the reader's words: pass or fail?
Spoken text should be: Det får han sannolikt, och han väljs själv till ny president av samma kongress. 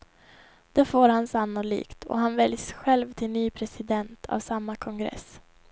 pass